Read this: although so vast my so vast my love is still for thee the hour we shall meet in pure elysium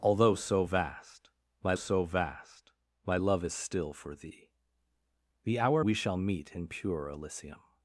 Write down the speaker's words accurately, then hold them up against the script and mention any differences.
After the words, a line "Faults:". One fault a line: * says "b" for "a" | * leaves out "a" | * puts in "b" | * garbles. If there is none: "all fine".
although so vast my so vast my love is still for thee the hour we shall meet in pure elysium
Faults:
all fine